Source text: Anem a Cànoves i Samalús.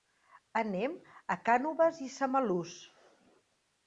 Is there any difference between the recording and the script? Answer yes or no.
no